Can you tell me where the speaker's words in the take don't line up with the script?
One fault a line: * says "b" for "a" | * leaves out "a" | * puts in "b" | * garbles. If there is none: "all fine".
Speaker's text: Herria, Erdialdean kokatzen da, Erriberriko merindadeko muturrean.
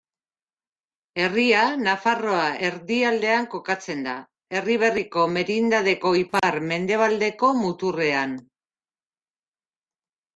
* puts in "Nafarroa"
* puts in "ipar mendebaldeko"